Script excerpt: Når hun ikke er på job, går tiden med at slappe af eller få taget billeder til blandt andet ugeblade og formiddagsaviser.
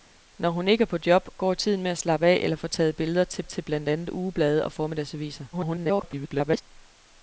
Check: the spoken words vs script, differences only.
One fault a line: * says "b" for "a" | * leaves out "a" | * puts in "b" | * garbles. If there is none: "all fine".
* puts in "til"
* garbles